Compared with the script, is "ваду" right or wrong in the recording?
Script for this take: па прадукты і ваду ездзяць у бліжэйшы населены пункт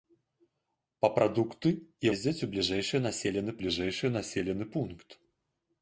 wrong